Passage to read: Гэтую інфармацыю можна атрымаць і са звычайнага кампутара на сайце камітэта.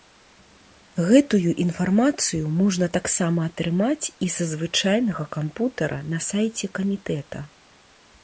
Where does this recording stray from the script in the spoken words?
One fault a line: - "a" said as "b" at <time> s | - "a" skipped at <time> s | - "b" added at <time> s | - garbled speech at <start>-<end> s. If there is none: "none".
- "таксама" added at 3.0 s